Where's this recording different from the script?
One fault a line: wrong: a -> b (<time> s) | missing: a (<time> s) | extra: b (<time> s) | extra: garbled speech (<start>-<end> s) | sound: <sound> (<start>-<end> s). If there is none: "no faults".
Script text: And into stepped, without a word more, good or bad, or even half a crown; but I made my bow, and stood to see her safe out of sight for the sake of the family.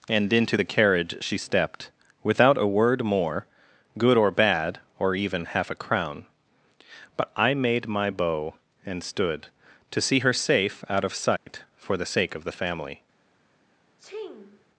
extra: the carriage she (0.5 s)
sound: dropout (11.4-11.5 s)
sound: sneeze (14.0-14.6 s)